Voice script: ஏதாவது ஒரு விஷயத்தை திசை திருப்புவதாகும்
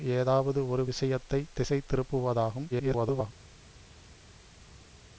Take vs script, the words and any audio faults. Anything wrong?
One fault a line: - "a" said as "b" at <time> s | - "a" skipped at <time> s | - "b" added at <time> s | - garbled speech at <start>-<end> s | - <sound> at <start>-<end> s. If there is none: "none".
- garbled speech at 2.7-3.3 s